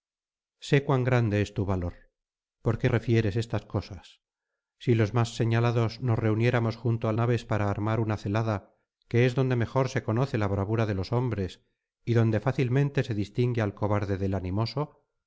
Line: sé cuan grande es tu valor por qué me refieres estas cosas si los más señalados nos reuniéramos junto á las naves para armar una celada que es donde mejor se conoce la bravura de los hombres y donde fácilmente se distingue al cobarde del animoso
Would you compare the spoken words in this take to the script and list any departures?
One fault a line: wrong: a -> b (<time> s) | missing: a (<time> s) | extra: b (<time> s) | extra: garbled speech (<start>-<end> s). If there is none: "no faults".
missing: me (2.9 s)
missing: las (7.1 s)